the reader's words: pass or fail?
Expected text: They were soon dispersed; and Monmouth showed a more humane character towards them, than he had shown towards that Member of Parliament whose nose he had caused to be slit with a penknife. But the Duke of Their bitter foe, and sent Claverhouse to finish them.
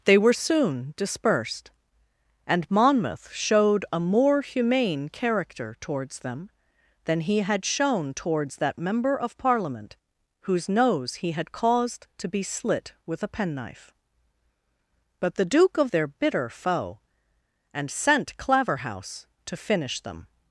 pass